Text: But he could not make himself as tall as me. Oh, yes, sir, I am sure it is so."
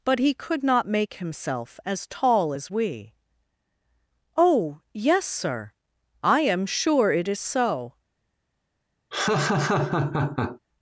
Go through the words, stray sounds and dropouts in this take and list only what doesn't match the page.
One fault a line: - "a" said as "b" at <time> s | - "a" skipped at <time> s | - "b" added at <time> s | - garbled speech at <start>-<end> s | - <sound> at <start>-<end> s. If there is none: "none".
- "me" said as "we" at 2.7 s
- laugh at 9.1-10.6 s